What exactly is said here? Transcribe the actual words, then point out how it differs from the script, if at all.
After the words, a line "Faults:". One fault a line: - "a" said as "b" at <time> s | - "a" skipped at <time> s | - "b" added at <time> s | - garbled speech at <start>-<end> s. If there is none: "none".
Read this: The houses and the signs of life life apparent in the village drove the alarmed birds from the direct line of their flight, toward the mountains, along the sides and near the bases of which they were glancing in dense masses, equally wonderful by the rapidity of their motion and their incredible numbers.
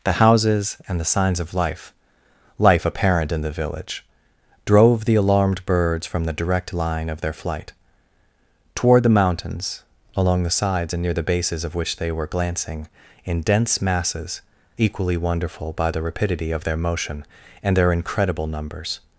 The houses and the signs of life life apparent in the village drove the alarmed birds from the direct line of their flight, toward the mountains, along the sides and near the bases of which they were glancing in dense masses, equally wonderful by the rapidity of their motion and their incredible numbers.
Faults:
none